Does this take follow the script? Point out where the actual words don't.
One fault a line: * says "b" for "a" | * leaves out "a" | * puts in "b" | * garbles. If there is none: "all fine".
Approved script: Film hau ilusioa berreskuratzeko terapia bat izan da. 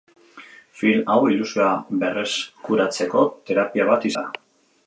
* leaves out "izan"